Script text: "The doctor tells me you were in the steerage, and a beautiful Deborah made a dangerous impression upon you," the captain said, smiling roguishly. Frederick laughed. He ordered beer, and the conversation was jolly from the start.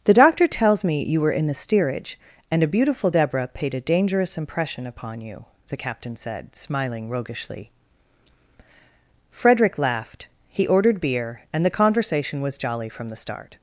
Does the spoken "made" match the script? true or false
false